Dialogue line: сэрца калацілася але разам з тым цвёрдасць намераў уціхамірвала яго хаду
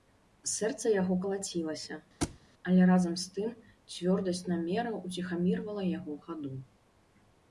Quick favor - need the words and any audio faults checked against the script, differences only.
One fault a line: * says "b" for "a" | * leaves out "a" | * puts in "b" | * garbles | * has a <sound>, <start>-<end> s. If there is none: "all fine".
* puts in "яго"
* has a thud, 2.2-2.4 s